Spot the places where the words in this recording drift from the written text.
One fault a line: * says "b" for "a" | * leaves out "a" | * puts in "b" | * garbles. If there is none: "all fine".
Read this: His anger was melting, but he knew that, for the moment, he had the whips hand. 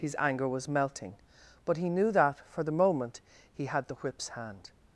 all fine